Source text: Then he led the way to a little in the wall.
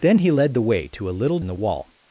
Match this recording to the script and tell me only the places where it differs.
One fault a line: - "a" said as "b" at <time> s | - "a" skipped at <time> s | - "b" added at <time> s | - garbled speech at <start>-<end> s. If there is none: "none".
none